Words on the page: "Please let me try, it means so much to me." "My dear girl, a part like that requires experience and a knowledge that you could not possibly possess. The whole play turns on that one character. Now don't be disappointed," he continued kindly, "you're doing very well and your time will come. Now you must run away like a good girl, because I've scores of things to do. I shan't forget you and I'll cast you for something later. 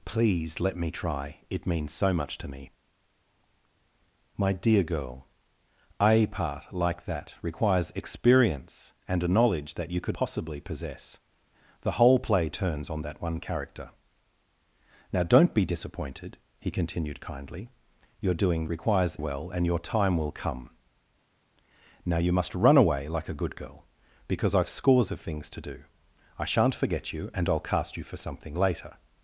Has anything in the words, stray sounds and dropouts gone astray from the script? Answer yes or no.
yes